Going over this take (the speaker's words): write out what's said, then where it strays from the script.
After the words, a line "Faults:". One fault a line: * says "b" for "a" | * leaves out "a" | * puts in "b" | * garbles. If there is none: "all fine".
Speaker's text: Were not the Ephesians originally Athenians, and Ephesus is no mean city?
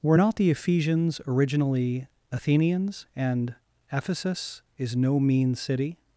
Were not the Ephesians originally Athenians, and Ephesus is no mean city?
Faults:
all fine